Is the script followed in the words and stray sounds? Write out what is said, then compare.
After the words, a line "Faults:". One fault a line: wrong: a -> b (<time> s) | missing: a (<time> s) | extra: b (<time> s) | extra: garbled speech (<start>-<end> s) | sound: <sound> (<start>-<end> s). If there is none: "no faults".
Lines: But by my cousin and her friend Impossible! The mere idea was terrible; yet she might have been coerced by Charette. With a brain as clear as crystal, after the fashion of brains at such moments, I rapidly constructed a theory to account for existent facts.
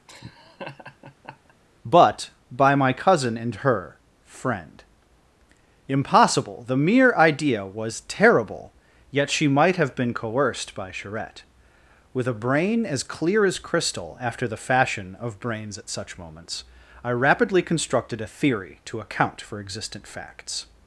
But by my cousin and her friend Impossible! The mere idea was terrible; yet she might have been coerced by Charette. With a brain as clear as crystal, after the fashion of brains at such moments, I rapidly constructed a theory to account for existent facts.
Faults:
sound: laugh (0.1-1.5 s)